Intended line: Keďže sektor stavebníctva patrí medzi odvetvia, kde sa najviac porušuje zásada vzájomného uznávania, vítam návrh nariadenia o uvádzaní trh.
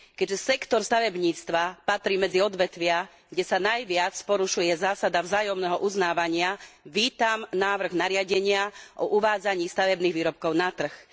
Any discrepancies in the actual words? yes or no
yes